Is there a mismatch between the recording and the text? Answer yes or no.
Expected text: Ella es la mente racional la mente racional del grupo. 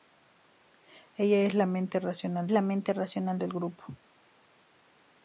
no